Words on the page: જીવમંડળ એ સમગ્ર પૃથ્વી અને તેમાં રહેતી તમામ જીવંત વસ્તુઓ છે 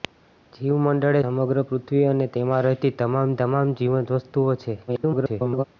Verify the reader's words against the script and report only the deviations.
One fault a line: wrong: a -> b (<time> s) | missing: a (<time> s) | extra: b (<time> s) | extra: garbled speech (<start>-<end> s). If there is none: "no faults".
missing: એ (1.2 s)
extra: તમામ (3.4 s)
extra: garbled speech (4.9-5.6 s)